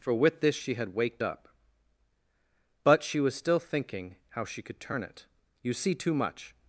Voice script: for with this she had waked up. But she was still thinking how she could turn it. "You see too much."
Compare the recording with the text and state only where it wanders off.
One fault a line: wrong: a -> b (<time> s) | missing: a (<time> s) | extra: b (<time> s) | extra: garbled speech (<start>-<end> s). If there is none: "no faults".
no faults